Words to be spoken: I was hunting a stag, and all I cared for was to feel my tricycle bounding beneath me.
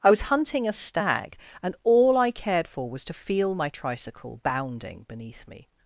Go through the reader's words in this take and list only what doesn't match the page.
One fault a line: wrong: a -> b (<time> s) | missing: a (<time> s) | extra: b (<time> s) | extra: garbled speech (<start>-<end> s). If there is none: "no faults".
no faults